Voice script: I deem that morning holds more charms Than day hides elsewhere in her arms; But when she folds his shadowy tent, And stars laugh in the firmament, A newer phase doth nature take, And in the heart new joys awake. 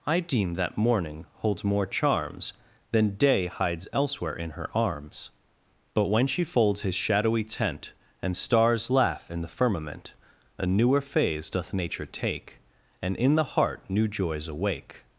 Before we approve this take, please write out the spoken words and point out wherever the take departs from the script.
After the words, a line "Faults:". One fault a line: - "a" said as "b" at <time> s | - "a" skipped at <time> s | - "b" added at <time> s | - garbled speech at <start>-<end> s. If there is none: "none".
I deem that morning holds more charms Than day hides elsewhere in her arms; But when she folds his shadowy tent, And stars laugh in the firmament, A newer phase doth nature take, And in the heart new joys awake.
Faults:
none